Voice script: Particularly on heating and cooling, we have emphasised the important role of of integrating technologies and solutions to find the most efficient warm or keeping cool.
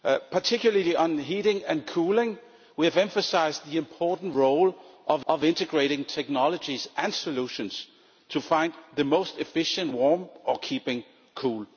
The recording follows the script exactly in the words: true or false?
true